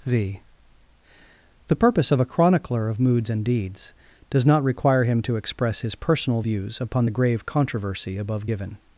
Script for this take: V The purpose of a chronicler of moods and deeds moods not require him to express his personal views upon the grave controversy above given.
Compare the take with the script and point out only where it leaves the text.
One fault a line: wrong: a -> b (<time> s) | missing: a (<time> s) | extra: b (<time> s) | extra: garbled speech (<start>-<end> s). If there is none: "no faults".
wrong: moods -> does (4.3 s)